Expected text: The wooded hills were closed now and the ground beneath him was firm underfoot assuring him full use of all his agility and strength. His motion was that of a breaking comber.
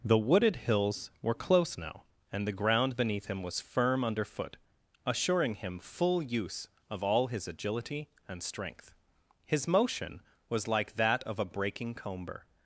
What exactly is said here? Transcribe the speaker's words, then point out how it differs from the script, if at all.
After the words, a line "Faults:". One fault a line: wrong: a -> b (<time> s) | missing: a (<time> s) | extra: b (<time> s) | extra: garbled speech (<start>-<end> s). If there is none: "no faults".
The wooded hills were close now and the ground beneath him was firm underfoot assuring him full use of all his agility and strength. His motion was like that of a breaking comber.
Faults:
wrong: closed -> close (1.4 s)
extra: like (10.7 s)